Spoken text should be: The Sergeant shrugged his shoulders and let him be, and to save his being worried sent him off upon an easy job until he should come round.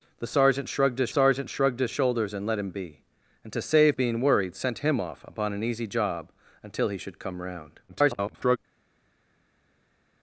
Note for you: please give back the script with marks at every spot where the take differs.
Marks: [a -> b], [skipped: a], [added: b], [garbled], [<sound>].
The Sergeant shrugged his [added: Sergeant shrugged his] shoulders and let him be, and to save [skipped: his] being worried sent him off upon an easy job until he should come round. [garbled]